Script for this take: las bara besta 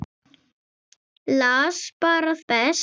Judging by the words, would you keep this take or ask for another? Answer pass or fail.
pass